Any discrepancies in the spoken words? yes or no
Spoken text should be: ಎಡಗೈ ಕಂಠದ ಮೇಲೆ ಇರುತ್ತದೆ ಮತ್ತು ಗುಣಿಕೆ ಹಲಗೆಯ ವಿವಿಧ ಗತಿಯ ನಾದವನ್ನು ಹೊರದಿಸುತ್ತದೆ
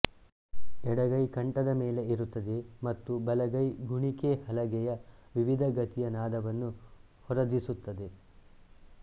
yes